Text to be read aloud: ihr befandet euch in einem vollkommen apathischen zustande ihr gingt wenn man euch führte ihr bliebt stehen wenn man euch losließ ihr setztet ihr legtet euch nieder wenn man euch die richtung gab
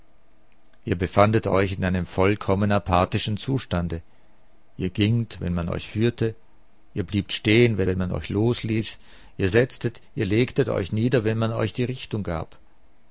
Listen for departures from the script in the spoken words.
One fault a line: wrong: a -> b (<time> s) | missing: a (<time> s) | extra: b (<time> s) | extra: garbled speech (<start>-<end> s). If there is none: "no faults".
extra: wenn (7.8 s)